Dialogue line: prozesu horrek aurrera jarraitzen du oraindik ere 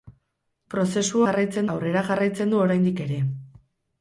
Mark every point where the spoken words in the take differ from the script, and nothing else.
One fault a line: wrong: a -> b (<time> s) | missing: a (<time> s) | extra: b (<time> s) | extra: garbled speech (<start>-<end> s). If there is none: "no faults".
wrong: horrek -> jarraitzen (1.3 s)